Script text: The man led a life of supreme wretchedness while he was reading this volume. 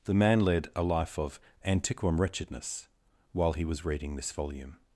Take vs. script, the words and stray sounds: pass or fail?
fail